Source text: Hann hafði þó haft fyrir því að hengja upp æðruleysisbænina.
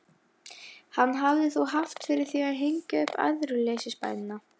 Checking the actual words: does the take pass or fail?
pass